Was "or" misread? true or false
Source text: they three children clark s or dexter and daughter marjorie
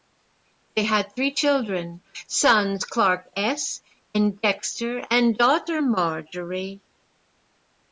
true